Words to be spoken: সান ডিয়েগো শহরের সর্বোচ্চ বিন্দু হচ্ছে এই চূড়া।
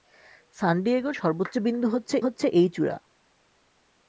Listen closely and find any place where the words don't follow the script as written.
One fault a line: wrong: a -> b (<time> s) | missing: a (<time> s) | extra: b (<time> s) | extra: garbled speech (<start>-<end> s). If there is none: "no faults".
missing: শহরের (1.1 s)
extra: হচ্ছে (2.2 s)